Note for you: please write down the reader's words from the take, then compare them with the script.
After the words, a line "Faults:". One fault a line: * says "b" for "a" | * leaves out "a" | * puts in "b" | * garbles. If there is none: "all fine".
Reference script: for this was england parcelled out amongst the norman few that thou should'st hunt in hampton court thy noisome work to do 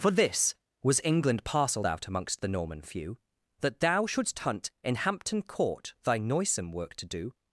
for this was england parcelled out amongst the norman few that thou should'st hunt in hampton court thy noisome work to do
Faults:
all fine